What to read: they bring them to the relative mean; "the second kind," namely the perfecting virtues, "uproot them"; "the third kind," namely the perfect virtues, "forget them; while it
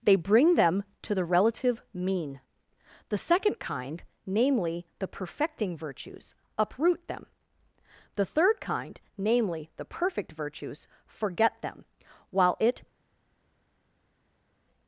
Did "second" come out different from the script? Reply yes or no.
no